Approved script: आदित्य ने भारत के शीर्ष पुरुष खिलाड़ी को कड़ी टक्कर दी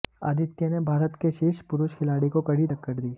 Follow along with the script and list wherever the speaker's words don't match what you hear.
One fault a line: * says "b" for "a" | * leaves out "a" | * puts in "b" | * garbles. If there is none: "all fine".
all fine